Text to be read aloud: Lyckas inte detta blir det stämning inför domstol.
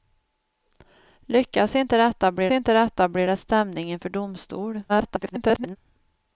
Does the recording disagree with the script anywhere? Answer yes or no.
yes